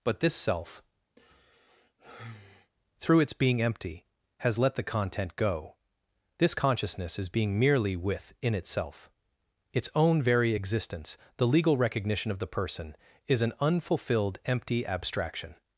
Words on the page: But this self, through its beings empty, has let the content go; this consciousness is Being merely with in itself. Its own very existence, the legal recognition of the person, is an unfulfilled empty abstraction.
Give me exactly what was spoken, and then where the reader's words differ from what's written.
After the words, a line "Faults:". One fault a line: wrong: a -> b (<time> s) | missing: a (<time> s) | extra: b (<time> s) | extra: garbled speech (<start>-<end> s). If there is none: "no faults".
But this self, through its being empty, has let the content go; this consciousness is Being merely with in itself. Its own very existence, the legal recognition of the person, is an unfulfilled empty abstraction.
Faults:
wrong: beings -> being (3.3 s)